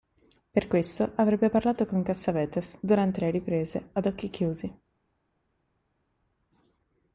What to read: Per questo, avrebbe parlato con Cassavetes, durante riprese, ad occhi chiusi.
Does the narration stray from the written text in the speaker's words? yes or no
yes